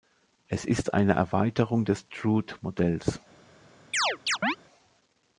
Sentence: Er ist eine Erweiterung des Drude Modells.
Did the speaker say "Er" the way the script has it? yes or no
no